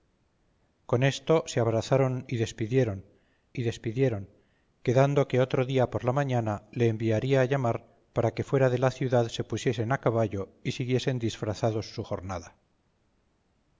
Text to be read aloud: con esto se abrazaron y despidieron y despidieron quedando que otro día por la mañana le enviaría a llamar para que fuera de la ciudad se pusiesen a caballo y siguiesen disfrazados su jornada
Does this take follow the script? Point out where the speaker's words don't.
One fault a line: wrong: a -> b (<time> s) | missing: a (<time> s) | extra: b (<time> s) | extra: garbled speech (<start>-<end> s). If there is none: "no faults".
no faults